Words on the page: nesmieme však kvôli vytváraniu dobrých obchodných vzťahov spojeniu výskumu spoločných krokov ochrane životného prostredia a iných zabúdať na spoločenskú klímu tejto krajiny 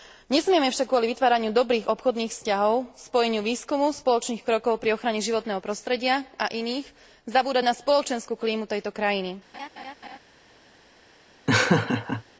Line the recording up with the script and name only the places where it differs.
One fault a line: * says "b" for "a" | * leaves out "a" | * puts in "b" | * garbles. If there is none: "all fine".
* puts in "pri"